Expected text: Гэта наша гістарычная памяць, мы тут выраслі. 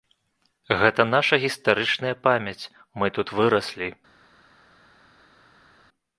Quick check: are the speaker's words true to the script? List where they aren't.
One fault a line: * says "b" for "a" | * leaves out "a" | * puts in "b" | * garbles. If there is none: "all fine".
all fine